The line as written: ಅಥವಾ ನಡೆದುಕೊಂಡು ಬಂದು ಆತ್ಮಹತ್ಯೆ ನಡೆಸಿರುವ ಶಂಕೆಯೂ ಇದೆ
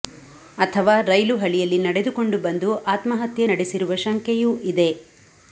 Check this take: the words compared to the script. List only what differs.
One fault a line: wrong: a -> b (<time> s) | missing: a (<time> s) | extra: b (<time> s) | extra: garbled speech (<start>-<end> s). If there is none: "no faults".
extra: ರೈಲು ಹಳಿಯಲ್ಲಿ (1.1 s)